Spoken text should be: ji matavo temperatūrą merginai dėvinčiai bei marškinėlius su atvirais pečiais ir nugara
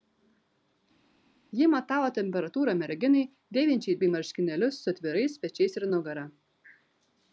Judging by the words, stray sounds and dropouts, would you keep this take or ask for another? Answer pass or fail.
pass